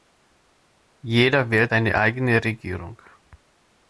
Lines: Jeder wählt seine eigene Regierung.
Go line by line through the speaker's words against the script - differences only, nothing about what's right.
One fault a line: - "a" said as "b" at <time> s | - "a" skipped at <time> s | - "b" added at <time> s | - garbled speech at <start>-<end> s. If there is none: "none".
none